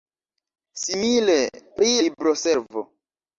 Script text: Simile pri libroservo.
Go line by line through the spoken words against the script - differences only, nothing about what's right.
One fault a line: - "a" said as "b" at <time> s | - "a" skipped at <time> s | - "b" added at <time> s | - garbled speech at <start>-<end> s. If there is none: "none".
none